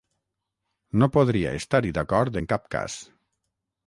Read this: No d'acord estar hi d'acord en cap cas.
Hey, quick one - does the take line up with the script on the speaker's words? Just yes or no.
no